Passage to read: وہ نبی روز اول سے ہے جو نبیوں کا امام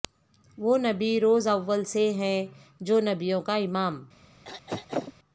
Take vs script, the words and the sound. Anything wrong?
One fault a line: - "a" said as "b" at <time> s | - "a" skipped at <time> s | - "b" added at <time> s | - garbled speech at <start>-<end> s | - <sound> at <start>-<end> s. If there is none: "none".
- throat clearing at 4.4-5.1 s